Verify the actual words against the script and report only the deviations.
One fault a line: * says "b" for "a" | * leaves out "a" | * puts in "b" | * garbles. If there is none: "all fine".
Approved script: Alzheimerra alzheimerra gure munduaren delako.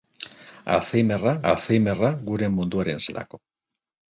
all fine